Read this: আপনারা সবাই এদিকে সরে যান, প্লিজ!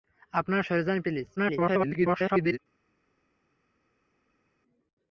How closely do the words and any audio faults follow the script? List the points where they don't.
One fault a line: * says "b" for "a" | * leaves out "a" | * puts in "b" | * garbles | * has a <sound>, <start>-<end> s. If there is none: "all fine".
* leaves out "সবাই এদিকে"
* garbles